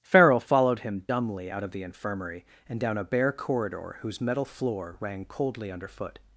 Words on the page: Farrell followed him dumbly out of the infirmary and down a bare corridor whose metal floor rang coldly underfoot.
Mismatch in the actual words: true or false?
false